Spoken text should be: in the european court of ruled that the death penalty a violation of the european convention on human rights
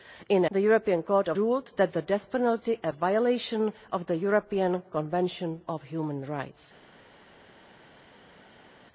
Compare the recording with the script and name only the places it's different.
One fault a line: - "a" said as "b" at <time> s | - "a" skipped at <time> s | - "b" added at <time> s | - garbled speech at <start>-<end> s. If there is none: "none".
none